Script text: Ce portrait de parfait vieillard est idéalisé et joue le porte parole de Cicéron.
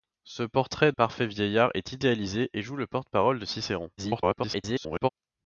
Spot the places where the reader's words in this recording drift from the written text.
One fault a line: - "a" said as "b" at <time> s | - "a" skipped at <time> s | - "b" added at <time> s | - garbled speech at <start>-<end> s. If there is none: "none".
- "de" skipped at 0.9 s
- garbled speech at 4.0-5.1 s